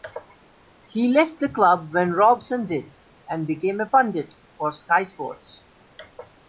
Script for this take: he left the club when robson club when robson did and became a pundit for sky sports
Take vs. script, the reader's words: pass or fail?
fail